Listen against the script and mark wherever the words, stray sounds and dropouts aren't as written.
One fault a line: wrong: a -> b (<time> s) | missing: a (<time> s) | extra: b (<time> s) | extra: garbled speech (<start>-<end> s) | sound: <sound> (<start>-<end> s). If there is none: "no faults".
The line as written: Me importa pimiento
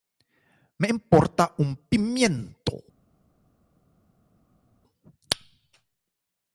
extra: un (1.6 s)